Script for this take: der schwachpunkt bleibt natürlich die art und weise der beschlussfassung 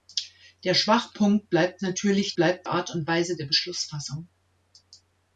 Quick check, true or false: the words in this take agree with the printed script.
false